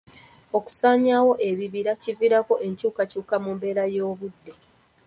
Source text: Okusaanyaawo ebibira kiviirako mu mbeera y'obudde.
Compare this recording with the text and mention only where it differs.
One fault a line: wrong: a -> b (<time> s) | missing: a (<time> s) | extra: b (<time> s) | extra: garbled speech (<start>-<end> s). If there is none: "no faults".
extra: enkyukakyuka (2.7 s)